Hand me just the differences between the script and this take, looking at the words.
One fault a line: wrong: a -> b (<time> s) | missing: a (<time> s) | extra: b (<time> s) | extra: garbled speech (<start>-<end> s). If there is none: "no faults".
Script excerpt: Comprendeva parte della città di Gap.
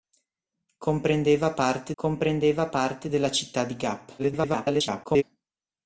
extra: comprendeva parte (2.0 s)
extra: garbled speech (4.2-5.2 s)